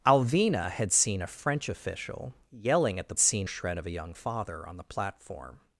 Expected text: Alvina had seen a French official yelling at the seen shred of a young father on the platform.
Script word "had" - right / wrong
right